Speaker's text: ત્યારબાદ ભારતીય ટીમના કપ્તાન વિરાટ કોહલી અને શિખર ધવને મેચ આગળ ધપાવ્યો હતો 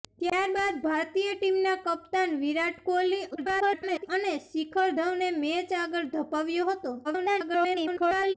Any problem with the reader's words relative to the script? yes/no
yes